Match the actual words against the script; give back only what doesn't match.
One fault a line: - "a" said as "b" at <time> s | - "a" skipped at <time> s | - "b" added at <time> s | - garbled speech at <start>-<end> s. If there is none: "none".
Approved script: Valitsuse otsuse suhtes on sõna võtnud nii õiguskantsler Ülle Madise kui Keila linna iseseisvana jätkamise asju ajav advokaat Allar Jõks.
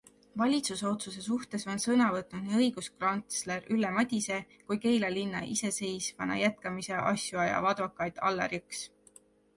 none